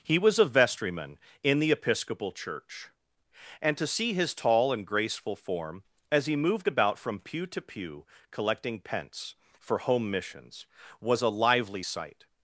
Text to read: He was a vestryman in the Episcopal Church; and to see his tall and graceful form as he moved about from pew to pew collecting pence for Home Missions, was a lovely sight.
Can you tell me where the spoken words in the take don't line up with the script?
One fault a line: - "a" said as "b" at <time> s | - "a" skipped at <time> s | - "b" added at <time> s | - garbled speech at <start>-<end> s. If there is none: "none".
- "lovely" said as "lively" at 11.3 s